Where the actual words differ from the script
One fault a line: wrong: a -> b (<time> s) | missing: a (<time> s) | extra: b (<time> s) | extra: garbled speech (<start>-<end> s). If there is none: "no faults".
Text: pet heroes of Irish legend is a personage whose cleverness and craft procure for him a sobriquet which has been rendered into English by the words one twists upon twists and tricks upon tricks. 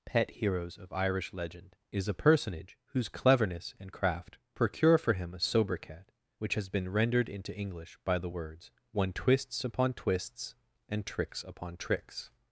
no faults